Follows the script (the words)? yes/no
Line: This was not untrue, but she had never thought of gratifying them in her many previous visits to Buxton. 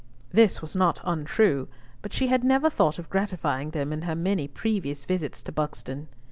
yes